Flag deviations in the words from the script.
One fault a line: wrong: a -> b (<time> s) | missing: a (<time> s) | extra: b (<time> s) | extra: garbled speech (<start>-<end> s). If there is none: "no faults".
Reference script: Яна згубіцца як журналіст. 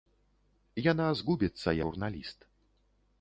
missing: як (1.7 s)